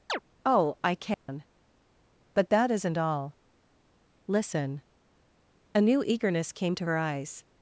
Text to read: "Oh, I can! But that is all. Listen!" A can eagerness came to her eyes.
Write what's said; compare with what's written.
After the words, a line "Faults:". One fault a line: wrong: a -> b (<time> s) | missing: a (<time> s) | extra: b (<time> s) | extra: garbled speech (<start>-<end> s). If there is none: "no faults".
"Oh, I can! But that isn't all. Listen!" A new eagerness came to her eyes.
Faults:
wrong: is -> isn't (2.7 s)
wrong: can -> new (5.8 s)